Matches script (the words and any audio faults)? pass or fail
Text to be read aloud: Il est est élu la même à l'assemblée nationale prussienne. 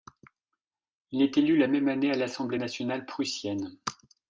fail